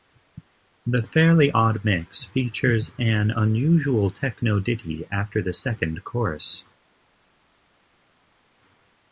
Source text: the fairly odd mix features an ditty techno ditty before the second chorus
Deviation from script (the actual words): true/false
true